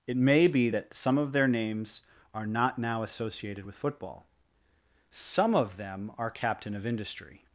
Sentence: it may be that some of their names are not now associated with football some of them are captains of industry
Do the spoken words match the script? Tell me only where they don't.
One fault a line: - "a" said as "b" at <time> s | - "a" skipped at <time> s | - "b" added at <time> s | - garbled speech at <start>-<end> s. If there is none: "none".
- "captains" said as "captain" at 6.3 s